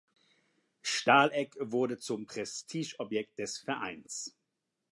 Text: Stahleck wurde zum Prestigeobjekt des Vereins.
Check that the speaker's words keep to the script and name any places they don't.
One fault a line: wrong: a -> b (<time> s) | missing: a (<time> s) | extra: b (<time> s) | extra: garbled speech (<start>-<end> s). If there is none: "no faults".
no faults